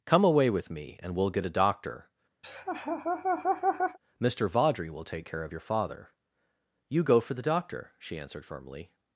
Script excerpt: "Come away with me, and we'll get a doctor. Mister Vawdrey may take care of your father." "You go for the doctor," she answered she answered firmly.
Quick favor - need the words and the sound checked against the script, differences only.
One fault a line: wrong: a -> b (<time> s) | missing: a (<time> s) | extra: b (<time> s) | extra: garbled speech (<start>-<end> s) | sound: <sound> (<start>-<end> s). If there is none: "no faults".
sound: laugh (2.4-4.0 s)
wrong: may -> will (4.9 s)
missing: she answered (8.4 s)